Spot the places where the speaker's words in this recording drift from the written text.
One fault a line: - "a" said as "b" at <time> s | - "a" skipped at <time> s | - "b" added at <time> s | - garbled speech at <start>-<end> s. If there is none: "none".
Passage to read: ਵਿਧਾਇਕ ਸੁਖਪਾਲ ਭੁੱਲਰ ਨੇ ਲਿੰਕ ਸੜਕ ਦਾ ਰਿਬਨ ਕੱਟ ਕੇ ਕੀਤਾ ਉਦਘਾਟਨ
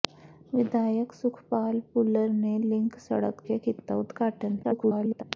- "ਦਾ ਰਿਬਨ ਕੱਟ" skipped at 3.4 s
- garbled speech at 4.6-5.2 s